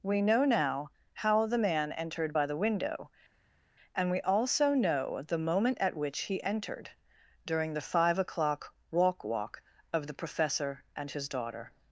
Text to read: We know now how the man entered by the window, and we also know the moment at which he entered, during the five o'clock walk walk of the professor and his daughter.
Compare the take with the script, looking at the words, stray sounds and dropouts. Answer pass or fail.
pass